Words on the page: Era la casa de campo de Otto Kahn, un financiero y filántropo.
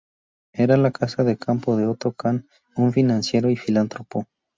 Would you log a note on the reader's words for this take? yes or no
no